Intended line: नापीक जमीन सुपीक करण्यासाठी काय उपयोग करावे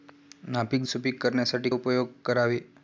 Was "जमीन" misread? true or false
true